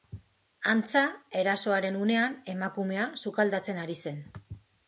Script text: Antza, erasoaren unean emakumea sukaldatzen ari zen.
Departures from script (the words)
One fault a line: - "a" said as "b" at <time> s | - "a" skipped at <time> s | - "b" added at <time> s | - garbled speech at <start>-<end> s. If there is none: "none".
none